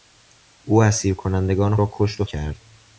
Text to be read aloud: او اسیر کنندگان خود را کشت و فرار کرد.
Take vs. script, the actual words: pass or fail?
fail